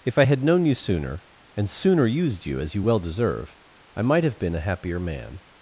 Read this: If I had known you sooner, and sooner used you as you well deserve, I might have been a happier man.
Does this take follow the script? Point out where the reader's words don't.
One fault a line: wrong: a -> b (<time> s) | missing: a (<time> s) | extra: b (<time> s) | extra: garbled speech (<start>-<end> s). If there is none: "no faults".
no faults